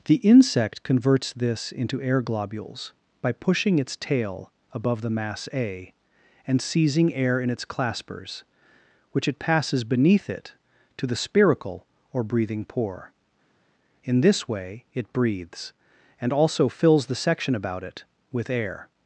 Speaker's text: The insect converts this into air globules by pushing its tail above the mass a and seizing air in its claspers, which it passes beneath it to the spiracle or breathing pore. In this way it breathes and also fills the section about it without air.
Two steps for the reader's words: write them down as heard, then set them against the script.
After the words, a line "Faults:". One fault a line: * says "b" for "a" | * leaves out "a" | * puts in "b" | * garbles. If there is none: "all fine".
The insect converts this into air globules by pushing its tail above the mass a and seizing air in its claspers, which it passes beneath it to the spiracle or breathing pore. In this way it breathes and also fills the section about it with air.
Faults:
* says "with" for "without"